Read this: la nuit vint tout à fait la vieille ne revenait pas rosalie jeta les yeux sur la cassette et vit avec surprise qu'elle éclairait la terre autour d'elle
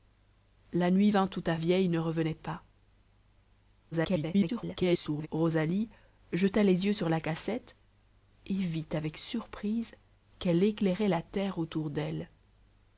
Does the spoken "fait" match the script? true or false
false